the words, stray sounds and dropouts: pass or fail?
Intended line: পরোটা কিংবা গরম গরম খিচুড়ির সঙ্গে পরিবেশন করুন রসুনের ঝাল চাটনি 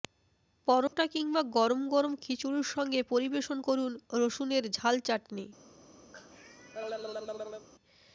fail